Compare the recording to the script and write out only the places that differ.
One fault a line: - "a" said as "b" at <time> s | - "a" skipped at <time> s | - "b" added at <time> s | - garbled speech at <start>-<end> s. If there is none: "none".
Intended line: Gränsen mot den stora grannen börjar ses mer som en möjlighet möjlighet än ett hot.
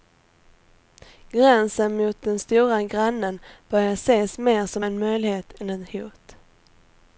- "möjlighet" skipped at 5.6 s